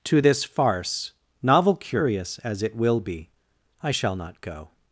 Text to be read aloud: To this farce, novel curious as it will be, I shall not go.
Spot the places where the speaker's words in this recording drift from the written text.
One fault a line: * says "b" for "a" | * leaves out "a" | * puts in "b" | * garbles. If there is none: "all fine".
all fine